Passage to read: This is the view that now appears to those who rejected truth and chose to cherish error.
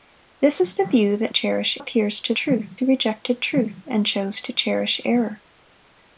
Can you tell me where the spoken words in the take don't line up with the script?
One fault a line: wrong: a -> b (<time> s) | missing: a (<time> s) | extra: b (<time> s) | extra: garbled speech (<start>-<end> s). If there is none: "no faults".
wrong: now -> cherish (1.3 s)
wrong: those -> truth (2.3 s)